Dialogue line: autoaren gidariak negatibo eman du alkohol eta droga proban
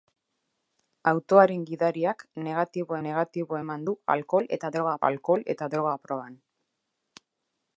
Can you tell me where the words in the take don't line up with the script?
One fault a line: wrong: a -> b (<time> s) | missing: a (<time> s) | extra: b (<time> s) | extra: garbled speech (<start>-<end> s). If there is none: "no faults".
extra: negatibo (3.1 s)
extra: alkohol eta droga (5.1 s)